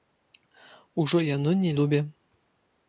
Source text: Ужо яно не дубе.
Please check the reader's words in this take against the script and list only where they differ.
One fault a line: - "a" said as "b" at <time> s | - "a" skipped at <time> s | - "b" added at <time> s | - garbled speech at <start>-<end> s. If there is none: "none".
none